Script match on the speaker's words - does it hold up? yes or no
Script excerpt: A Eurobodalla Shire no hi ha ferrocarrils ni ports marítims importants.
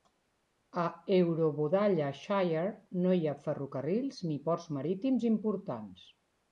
yes